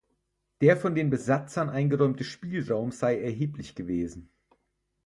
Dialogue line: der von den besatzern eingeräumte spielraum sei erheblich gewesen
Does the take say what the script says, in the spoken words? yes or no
yes